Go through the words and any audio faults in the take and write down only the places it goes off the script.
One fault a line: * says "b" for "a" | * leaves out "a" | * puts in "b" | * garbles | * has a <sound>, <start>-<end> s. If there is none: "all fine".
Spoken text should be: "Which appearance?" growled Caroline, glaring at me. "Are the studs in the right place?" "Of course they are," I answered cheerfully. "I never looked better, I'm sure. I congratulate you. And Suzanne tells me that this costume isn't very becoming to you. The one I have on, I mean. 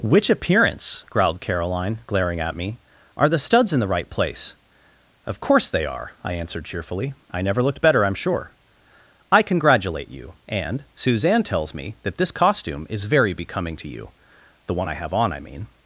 * says "is" for "isn't"